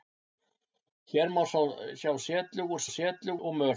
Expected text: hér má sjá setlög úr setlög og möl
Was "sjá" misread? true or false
false